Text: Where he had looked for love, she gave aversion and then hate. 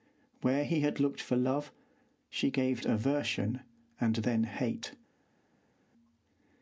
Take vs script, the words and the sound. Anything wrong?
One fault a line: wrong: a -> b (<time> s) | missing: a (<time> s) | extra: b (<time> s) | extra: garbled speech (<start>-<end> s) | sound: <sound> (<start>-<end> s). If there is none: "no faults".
no faults